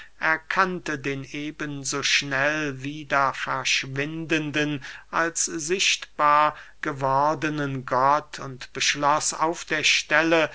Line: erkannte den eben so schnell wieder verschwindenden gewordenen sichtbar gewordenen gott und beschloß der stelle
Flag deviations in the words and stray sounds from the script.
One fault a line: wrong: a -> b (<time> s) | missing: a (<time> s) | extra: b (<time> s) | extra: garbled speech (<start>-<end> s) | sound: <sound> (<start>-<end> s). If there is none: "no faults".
wrong: gewordenen -> als (5.1 s)
extra: auf (9.3 s)